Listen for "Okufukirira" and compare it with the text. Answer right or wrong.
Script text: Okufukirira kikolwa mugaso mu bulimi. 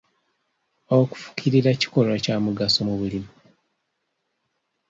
right